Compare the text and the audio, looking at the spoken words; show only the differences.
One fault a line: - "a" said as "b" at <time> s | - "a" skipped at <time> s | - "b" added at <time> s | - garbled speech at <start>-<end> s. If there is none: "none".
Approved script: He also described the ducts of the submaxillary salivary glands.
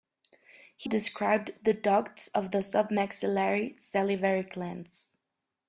- "also" skipped at 0.9 s